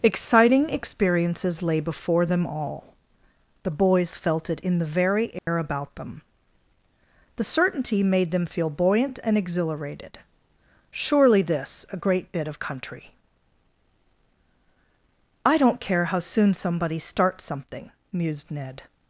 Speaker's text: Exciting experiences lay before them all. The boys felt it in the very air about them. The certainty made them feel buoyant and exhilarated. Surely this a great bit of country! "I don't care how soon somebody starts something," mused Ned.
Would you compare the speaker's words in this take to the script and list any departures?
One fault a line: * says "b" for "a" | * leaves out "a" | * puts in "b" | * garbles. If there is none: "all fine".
all fine